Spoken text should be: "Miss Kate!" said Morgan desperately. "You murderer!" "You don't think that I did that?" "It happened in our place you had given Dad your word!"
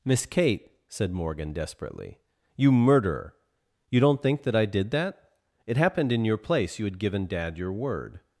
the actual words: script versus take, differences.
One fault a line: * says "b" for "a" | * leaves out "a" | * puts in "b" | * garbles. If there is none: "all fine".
* says "your" for "our"